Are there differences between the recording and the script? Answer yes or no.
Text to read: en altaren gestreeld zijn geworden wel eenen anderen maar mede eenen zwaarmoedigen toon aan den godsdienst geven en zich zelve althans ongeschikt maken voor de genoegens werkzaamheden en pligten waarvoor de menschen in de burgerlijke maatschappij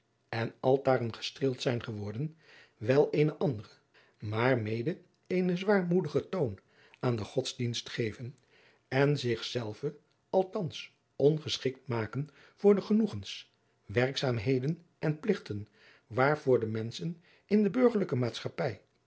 no